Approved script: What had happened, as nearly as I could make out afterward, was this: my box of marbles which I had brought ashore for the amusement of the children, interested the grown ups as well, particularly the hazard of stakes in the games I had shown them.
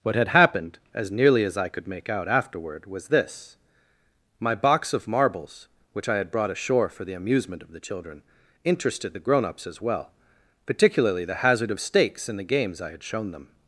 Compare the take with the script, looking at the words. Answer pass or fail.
pass